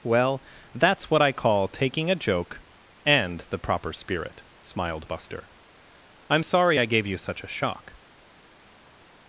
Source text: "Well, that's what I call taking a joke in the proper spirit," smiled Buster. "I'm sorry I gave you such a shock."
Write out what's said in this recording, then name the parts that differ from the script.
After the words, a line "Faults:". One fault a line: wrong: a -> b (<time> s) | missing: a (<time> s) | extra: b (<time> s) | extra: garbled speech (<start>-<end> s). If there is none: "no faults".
"Well, that's what I call taking a joke and the proper spirit," smiled Buster. "I'm sorry I gave you such a shock."
Faults:
wrong: in -> and (3.0 s)